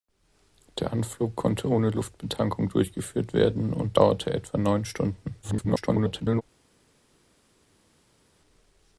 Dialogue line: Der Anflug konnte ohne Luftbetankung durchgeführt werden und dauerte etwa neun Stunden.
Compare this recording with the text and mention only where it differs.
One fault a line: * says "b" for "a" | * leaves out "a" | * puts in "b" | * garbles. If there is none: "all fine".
* garbles